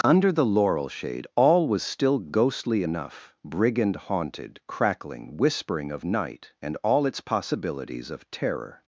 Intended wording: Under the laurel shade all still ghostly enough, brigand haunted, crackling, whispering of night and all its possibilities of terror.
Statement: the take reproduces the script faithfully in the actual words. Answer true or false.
false